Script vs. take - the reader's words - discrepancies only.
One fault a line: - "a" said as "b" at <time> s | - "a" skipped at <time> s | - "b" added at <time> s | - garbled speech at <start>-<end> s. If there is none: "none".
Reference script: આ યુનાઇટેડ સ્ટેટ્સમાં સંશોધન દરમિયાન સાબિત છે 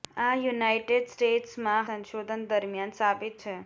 none